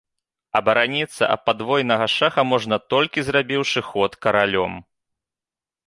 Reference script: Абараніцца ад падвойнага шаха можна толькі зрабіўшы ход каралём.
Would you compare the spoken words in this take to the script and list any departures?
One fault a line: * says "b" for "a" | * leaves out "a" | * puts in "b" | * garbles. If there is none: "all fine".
all fine